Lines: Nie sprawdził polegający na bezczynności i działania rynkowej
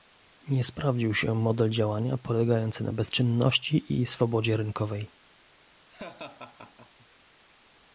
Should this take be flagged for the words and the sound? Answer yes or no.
yes